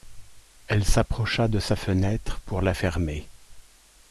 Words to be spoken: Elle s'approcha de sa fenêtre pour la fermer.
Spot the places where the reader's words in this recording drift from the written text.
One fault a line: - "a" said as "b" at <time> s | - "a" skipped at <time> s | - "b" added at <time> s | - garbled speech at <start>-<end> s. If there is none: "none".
none